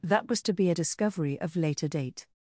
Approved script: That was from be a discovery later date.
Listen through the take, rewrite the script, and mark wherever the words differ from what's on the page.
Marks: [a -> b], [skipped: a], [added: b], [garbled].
That was [from -> to] be a discovery [added: of] later date.